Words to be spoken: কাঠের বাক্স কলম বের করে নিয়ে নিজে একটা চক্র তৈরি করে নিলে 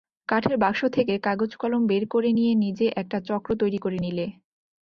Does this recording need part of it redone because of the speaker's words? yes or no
yes